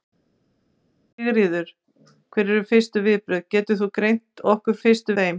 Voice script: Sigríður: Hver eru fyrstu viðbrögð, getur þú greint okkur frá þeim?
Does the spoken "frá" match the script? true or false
false